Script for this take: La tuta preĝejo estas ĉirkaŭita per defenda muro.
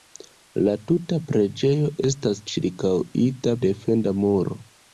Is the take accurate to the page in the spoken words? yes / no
no